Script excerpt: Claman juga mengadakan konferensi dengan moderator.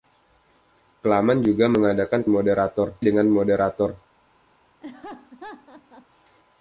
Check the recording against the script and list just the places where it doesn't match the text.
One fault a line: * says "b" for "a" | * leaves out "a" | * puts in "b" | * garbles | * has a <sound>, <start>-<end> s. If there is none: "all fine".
* says "moderator" for "konferensi"
* has a laugh, 4.8-6.1 s